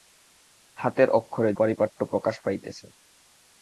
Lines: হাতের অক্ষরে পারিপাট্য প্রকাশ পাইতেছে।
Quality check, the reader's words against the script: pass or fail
pass